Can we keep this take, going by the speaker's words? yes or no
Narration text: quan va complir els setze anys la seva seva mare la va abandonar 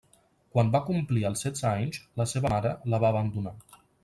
no